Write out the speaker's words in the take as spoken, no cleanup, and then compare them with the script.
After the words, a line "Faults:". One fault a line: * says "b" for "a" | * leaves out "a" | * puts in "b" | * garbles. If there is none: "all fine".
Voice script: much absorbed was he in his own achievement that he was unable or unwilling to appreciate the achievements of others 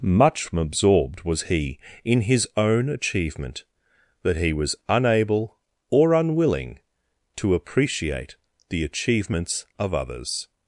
much absorbed was he in his own achievement that he was unable or unwilling to appreciate the achievements of others
Faults:
all fine